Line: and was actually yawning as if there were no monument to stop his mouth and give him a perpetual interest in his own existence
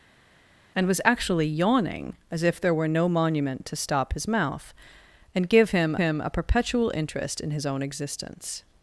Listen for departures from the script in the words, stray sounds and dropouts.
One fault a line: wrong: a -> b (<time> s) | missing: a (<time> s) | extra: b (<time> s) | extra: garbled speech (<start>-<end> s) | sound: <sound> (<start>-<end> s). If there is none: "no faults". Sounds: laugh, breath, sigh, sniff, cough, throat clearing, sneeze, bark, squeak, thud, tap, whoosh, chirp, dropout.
extra: him (5.9 s)